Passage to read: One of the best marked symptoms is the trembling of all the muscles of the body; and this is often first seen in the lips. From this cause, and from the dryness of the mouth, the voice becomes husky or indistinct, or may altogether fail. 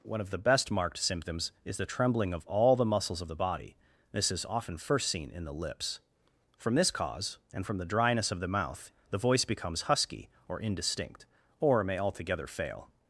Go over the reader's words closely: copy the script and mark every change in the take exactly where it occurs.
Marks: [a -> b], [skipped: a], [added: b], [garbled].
One of the best marked symptoms is the trembling of all the muscles of the body; [skipped: and] this is often first seen in the lips. From this cause, and from the dryness of the mouth, the voice becomes husky or indistinct, or may altogether fail.